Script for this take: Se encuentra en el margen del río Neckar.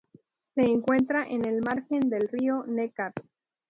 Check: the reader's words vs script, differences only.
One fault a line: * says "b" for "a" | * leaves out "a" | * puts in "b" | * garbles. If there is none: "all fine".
all fine